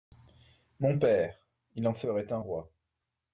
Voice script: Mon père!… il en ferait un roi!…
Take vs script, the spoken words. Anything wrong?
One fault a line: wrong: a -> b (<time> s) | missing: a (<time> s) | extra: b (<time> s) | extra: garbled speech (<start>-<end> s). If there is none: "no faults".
no faults